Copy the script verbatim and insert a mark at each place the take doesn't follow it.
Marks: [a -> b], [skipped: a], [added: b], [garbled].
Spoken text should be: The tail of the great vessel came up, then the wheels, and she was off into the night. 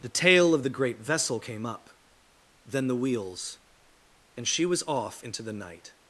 The tail of the great vessel came up, then the wheels, and she was off into the night.